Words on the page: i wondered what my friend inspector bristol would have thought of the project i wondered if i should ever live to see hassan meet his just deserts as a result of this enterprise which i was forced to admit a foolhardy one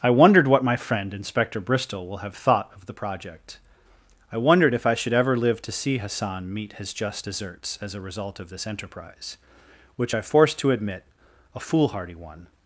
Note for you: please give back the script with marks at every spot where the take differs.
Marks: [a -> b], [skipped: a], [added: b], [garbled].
i wondered what my friend inspector bristol [would -> will] have thought of the project i wondered if i should ever live to see hassan meet his just deserts as a result of this enterprise which i [skipped: was] forced to admit a foolhardy one